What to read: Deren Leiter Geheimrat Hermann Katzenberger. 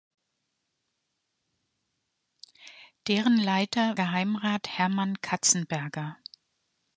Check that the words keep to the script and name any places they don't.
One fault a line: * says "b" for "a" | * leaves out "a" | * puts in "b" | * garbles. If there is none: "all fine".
all fine